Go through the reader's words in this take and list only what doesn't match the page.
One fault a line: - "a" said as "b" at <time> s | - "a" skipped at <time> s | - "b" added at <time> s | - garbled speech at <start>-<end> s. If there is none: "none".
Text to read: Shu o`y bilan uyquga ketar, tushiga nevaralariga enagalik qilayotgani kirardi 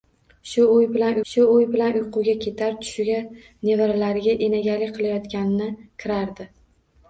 - "shu o`y bilan" added at 1.3 s